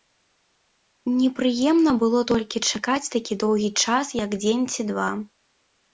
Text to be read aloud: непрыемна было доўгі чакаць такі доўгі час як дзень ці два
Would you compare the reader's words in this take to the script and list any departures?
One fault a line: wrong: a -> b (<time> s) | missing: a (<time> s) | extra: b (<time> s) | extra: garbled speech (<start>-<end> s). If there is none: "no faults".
wrong: доўгі -> толькі (2.3 s)